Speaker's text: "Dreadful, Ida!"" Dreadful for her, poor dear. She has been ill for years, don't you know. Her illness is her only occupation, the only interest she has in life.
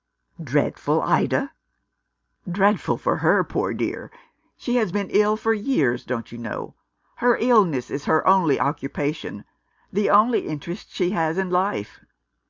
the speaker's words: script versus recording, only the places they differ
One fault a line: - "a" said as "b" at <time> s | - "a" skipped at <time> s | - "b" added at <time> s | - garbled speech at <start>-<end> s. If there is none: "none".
none